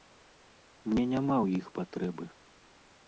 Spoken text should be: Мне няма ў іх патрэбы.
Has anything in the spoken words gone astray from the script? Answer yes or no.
no